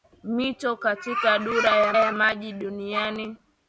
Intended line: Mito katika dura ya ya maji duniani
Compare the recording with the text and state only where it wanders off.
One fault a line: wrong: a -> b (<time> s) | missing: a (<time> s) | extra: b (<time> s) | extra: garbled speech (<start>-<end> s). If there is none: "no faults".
no faults